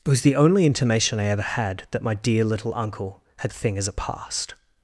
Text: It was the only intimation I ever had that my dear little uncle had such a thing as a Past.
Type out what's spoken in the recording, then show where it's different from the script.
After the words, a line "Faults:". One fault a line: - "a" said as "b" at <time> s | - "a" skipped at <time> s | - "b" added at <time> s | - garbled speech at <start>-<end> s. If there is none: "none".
It was the only intimation I ever had that my dear little uncle had a thing as a Past.
Faults:
- "such" skipped at 3.5 s